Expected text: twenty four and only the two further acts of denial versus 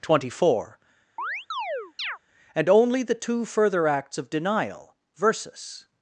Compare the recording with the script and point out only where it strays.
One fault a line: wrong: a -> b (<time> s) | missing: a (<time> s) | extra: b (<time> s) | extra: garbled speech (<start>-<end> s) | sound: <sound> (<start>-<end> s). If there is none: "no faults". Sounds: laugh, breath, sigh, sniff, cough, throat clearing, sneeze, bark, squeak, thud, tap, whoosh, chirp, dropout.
sound: chirp (1.2-2.2 s)